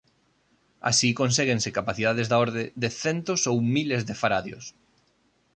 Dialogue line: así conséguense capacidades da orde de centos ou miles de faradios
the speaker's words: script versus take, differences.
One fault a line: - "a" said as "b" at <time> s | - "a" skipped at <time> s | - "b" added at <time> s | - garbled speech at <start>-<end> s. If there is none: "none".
none